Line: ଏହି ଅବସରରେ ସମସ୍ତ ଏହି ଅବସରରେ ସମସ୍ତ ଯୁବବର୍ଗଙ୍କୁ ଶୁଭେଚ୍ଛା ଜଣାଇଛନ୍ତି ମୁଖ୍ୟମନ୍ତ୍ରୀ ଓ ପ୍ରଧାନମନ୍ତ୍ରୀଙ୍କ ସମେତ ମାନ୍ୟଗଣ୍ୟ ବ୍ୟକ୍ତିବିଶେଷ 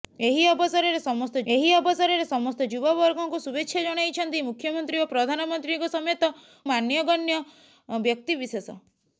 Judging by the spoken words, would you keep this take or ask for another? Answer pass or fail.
pass